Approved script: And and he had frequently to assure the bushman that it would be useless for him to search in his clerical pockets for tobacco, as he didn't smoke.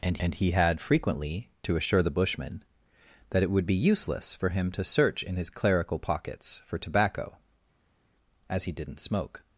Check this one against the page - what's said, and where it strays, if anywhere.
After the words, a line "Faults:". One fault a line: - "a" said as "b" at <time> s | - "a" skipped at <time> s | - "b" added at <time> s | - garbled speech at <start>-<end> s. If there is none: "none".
And and he had frequently to assure the bushman that it would be useless for him to search in his clerical pockets for tobacco, as he didn't smoke.
Faults:
none